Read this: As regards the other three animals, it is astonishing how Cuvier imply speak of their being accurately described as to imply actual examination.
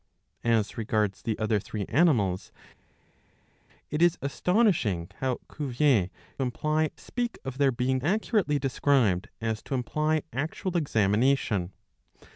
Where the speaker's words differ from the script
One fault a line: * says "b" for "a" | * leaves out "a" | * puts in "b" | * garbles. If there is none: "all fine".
all fine